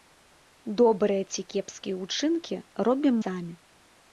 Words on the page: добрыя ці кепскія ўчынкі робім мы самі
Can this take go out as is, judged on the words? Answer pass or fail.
fail